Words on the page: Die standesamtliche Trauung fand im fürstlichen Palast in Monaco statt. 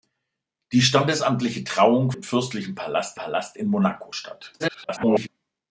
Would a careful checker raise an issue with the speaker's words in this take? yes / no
yes